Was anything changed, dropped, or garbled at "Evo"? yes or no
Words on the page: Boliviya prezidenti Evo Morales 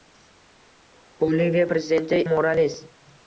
yes